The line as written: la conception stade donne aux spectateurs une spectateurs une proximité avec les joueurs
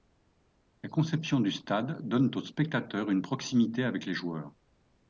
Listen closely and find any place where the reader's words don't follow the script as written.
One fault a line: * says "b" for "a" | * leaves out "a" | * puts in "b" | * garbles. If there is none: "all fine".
* puts in "du"
* leaves out "spectateurs une"